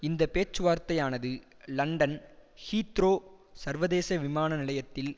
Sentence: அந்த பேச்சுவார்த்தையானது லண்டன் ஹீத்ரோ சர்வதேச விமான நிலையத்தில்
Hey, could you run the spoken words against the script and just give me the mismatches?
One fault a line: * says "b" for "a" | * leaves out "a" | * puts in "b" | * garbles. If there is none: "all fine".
* says "இந்த" for "அந்த"